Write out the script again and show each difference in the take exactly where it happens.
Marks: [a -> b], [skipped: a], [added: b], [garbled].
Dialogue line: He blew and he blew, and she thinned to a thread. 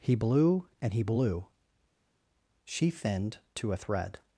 He blew and he blew, [skipped: and] she thinned to a thread.